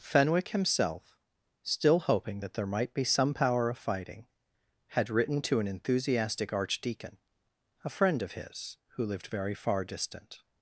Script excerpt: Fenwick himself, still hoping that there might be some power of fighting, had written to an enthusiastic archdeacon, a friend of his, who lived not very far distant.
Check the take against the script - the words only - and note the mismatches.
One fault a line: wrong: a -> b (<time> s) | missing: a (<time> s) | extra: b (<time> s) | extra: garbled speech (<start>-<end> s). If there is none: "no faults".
missing: not (9.3 s)